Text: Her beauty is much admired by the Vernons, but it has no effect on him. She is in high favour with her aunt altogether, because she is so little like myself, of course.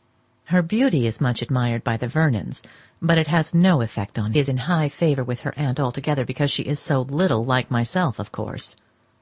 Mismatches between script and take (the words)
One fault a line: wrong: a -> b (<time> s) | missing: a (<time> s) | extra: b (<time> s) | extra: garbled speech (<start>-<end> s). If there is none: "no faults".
missing: him She (4.3 s)